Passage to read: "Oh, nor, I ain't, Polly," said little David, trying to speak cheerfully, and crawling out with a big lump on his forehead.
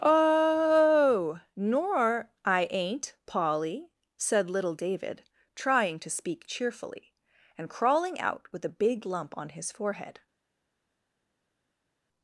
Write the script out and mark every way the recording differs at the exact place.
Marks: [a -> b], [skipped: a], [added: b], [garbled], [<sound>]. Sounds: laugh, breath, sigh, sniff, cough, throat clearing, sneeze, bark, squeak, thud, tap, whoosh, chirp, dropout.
"Oh, nor, I ain't, Polly," said little David, trying to speak cheerfully, and crawling out with a big lump on his forehead.